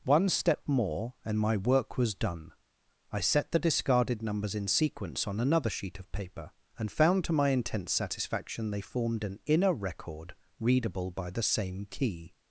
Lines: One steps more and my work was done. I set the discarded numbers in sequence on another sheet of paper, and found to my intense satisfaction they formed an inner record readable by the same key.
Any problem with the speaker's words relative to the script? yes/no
yes